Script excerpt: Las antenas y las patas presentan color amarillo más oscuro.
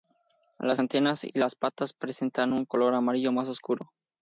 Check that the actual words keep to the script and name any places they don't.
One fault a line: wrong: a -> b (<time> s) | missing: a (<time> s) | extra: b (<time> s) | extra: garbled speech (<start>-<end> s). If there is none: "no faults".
extra: un (2.5 s)